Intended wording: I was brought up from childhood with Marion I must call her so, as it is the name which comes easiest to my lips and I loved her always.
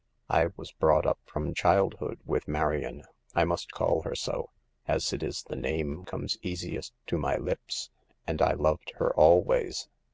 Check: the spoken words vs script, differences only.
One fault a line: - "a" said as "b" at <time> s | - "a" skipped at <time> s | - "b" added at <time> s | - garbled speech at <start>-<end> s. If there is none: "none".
- "which" skipped at 6.0 s